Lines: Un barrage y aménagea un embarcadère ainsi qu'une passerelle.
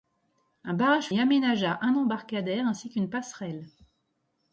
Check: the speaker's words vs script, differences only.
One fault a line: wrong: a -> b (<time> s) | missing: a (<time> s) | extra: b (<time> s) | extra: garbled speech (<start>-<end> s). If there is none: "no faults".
no faults